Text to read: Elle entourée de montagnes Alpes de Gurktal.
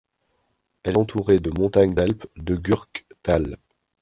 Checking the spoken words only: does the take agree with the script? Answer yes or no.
yes